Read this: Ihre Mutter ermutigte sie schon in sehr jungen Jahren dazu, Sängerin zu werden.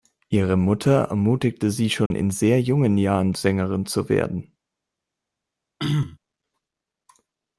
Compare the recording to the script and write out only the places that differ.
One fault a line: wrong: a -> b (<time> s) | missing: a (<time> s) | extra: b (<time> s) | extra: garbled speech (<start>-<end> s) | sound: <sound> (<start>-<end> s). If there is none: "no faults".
sound: dropout (2.1-2.1 s)
missing: dazu (3.3 s)
sound: throat clearing (5.8-6.2 s)